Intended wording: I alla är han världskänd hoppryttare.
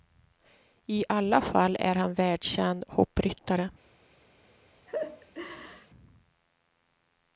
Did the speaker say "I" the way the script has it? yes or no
yes